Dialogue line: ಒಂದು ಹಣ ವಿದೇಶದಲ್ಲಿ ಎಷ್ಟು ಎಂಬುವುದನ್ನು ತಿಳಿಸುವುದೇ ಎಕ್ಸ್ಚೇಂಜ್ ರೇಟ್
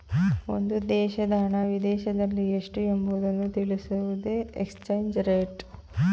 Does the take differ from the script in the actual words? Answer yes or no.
yes